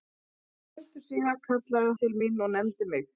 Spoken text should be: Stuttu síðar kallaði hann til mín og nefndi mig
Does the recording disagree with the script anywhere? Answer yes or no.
yes